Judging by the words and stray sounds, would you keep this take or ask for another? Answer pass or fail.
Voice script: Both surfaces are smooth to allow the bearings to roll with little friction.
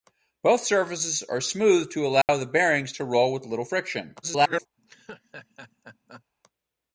fail